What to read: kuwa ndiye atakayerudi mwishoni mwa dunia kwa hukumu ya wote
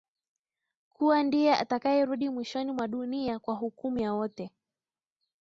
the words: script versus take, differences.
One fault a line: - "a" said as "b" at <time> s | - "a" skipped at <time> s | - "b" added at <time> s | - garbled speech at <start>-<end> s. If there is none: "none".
none